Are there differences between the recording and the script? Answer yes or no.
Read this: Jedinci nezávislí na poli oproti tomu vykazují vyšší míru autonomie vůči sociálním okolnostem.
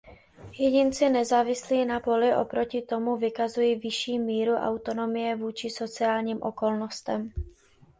no